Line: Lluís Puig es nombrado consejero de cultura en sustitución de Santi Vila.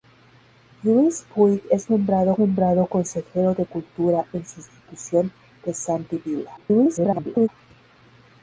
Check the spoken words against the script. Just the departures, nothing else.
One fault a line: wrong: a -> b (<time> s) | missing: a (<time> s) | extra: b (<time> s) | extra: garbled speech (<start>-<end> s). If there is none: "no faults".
extra: nombrado (2.4 s)
extra: garbled speech (6.6-7.5 s)